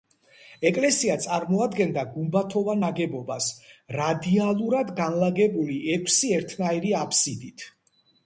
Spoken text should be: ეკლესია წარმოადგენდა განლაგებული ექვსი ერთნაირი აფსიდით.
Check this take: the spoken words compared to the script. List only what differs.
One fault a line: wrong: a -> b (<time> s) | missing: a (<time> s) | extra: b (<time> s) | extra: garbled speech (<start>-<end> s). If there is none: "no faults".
extra: გუმბათოვან ნაგებობას რადიალურად (2.1 s)